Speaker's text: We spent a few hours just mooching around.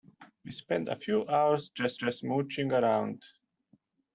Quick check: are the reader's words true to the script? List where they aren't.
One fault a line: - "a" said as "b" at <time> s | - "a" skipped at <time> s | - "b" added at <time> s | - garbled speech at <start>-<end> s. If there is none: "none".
- "just" added at 1.9 s